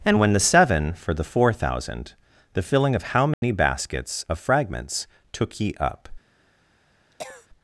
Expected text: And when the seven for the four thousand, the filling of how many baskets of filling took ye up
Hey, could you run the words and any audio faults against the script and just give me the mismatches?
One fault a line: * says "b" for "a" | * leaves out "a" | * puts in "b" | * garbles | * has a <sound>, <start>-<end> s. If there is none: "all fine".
* has a dropout, 3.3-3.4 s
* says "fragments" for "filling"
* has a cough, 7.1-7.5 s